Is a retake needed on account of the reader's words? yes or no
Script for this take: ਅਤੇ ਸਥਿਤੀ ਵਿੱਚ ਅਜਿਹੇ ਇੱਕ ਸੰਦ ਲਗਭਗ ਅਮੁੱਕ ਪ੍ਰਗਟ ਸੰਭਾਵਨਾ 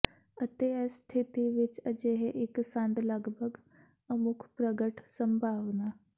yes